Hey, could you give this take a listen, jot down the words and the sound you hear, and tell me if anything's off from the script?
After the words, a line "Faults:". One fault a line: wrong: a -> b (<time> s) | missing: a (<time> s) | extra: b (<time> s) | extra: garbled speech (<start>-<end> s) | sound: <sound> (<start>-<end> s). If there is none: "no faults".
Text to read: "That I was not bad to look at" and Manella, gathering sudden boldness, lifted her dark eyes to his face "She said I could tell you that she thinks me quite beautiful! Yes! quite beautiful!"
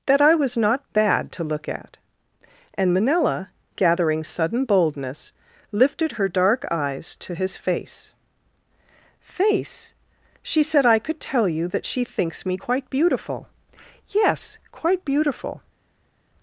"That I was not bad to look at" and Manella, gathering sudden boldness, lifted her dark eyes to his face face "She said I could tell you that she thinks me quite beautiful! Yes! quite beautiful!"
Faults:
extra: face (9.2 s)